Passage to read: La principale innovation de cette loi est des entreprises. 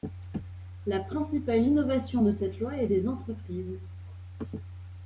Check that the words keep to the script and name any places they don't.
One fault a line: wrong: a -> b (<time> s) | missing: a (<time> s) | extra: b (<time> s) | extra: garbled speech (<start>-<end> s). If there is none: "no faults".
no faults